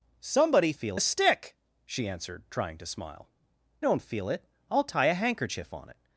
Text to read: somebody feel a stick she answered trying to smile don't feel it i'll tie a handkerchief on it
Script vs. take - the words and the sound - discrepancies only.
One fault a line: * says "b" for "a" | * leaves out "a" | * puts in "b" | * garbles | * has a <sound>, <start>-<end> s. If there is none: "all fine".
all fine